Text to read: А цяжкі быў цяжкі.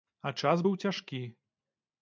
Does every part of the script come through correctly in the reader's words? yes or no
no